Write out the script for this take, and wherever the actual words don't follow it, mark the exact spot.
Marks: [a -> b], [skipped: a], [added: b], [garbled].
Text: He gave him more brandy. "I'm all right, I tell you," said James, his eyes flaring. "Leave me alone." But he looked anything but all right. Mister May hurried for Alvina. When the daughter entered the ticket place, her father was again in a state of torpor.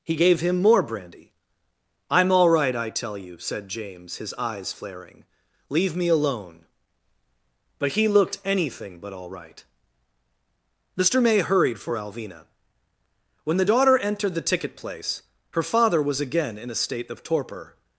He gave him more brandy. "I'm all right, I tell you," said James, his eyes flaring. "Leave me alone." But he looked anything but all right. Mister May hurried for Alvina. When the daughter entered the ticket place, her father was again in a state of torpor.